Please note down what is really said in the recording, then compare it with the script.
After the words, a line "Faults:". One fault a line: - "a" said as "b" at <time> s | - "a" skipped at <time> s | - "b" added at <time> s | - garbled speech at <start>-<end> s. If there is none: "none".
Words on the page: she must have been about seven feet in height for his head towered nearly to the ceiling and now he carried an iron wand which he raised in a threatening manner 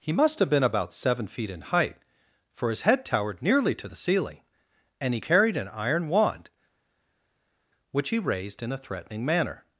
he must have been about seven feet in height for his head towered nearly to the ceiling and he carried an iron wand which he raised in a threatening manner
Faults:
- "she" said as "he" at 0.0 s
- "now" skipped at 5.1 s